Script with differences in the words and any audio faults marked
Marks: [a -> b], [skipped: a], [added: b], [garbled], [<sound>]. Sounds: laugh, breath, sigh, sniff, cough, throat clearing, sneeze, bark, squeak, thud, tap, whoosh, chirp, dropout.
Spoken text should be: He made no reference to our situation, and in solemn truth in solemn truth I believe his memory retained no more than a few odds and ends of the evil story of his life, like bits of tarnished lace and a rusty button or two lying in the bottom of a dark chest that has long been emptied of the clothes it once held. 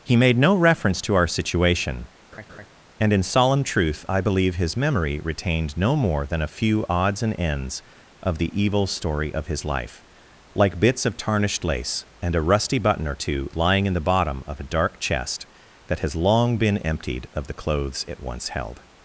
He made no reference to our situation, [laugh] and in solemn truth [skipped: in solemn truth] I believe his memory retained no more than a few odds and ends of the evil story of his life, like bits of tarnished lace and a rusty button or two lying in the bottom of a dark chest that has long been emptied of the clothes it once held.